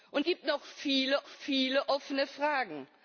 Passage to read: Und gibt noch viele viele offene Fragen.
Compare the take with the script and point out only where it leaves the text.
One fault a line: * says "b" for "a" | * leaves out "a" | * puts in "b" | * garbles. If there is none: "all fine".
all fine